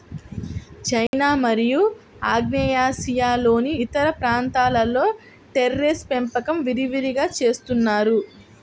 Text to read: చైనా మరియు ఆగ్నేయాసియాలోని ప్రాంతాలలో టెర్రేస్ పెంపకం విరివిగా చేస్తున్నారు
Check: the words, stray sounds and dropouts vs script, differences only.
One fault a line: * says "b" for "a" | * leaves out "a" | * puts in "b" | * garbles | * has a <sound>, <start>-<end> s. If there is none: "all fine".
* has a dropout, 1.1-1.1 s
* puts in "ఇతర"